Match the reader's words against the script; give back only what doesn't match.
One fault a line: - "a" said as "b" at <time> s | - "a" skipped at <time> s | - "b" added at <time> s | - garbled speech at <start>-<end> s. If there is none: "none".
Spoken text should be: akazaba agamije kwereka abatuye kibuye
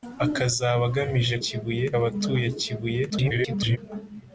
- "kwereka" said as "kibuye" at 1.4 s
- garbled speech at 3.1-3.8 s